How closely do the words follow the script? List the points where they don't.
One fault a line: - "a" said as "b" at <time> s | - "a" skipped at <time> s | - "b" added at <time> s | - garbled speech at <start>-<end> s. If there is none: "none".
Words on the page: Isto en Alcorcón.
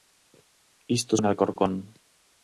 none